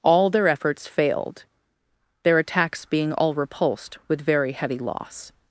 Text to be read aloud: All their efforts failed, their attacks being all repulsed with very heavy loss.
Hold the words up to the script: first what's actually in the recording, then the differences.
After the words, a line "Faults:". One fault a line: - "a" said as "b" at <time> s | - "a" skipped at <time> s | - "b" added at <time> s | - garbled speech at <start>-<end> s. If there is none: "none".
All their efforts failed, their attacks being all repulsed with very heavy loss.
Faults:
none